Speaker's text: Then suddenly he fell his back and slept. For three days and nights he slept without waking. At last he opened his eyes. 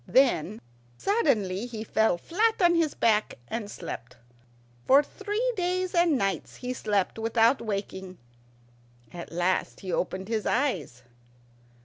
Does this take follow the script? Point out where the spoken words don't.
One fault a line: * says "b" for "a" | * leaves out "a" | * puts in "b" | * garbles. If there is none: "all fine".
* puts in "flat on"